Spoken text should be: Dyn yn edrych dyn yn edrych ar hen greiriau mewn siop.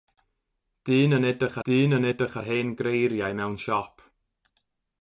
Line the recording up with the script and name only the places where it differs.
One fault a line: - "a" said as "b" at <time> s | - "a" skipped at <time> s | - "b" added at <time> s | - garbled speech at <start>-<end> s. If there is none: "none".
none